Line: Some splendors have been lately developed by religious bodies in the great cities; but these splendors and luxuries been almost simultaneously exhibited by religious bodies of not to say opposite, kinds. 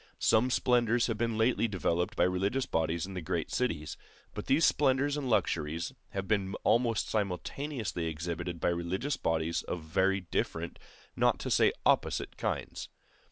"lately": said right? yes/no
yes